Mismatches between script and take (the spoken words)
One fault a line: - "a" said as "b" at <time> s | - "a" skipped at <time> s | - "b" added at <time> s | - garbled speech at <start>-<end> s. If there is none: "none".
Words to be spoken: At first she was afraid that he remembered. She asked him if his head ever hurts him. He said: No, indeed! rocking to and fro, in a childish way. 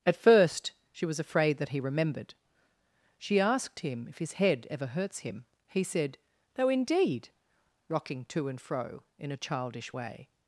none